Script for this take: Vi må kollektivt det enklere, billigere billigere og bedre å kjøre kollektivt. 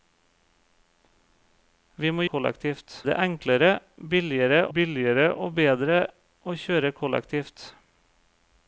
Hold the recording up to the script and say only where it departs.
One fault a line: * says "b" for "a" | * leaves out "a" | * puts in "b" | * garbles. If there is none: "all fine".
all fine